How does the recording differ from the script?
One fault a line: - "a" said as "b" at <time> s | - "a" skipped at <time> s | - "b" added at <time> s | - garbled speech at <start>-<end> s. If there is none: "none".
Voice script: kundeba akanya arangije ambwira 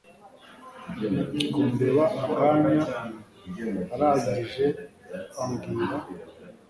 none